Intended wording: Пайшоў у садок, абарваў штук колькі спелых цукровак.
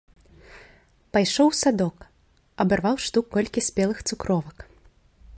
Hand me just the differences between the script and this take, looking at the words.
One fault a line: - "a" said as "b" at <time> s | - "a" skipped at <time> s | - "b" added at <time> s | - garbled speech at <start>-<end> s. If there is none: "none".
none